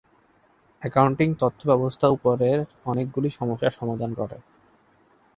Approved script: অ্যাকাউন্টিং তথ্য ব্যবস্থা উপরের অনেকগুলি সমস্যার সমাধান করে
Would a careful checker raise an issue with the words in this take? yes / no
no